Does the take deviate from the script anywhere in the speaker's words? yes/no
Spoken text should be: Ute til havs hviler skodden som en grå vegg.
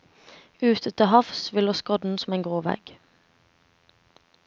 no